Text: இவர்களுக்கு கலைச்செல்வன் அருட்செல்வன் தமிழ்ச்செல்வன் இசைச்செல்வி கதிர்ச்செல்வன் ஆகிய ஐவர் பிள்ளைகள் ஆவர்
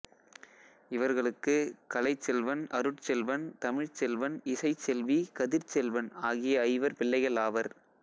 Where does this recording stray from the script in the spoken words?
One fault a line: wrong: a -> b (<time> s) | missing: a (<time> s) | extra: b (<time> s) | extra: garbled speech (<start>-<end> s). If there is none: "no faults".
no faults